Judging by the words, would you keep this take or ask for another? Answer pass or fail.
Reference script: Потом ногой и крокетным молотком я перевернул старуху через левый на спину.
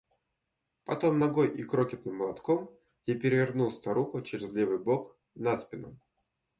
fail